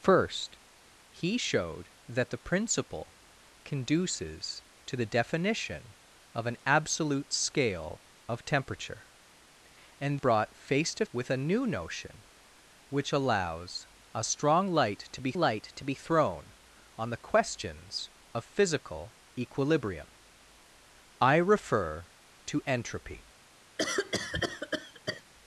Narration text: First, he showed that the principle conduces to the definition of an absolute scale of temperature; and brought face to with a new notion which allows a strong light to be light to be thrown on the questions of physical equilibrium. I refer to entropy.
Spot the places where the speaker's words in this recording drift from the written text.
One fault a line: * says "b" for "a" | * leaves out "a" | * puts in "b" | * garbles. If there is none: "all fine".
all fine